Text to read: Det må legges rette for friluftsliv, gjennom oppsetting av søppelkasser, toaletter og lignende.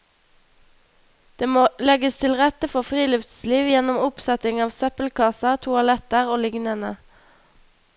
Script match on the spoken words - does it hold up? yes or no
no